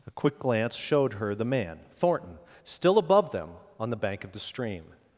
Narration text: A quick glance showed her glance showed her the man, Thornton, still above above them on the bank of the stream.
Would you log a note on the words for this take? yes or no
yes